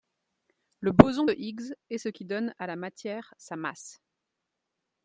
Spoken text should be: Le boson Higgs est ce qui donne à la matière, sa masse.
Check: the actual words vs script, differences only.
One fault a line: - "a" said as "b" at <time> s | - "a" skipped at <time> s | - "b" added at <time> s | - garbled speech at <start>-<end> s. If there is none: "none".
- "de" added at 1.2 s